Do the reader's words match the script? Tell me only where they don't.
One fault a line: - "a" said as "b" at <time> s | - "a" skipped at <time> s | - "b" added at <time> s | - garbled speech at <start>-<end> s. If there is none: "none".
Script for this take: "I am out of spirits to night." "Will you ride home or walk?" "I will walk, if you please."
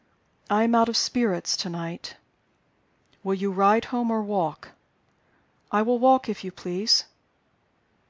none